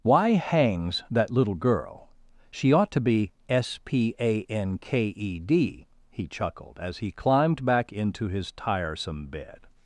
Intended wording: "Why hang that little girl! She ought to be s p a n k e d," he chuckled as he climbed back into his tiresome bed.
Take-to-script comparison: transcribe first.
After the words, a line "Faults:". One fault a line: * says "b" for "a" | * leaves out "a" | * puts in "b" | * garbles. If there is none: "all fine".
"Why hangs that little girl! She ought to be s p a n k e d," he chuckled as he climbed back into his tiresome bed.
Faults:
* says "hangs" for "hang"